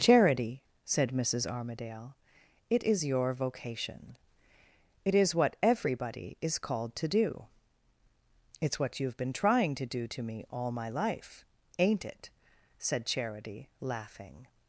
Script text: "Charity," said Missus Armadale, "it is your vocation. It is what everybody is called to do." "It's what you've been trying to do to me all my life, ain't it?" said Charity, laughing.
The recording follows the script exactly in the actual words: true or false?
true